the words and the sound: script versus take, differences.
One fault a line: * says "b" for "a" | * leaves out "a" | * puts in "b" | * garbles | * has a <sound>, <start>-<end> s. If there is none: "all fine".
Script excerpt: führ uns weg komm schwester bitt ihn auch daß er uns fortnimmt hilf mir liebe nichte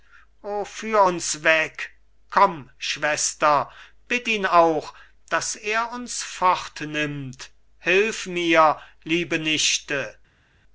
all fine